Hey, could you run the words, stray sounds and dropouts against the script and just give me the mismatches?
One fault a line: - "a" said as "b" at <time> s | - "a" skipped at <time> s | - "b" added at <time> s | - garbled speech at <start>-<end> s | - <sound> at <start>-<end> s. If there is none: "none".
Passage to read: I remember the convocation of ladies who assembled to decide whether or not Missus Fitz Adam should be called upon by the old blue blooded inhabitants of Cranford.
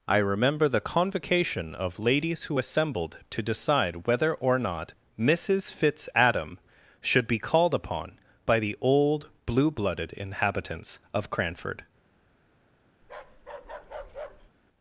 - bark at 13.0-14.5 s